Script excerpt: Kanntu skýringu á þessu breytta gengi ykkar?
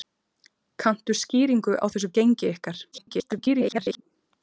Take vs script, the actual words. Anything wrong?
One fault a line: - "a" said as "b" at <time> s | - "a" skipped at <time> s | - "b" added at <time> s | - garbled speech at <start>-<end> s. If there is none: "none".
- "breytta" skipped at 2.1 s
- garbled speech at 2.9-4.0 s